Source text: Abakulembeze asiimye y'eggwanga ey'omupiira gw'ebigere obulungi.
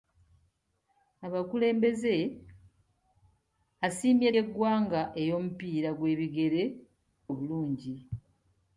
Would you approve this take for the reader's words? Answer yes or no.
yes